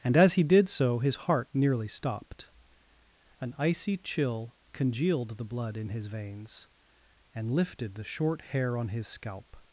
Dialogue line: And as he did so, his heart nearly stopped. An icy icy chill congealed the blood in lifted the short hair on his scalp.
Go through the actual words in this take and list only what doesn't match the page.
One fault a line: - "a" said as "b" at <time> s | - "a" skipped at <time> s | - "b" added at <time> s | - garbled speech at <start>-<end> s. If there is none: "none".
- "icy" skipped at 4.0 s
- "his veins and" added at 5.9 s